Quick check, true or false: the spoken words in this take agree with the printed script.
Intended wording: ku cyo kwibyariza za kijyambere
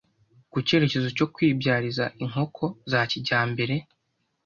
false